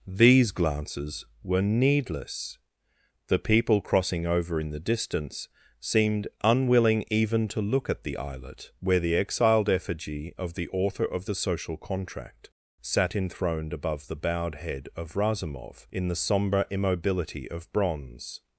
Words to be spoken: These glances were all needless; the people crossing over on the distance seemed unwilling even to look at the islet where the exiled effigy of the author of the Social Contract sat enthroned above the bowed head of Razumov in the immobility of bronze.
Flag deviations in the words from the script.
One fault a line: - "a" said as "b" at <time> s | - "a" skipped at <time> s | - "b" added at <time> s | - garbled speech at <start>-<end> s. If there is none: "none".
- "all" skipped at 1.6 s
- "on" said as "in" at 4.6 s
- "sombre" added at 16.2 s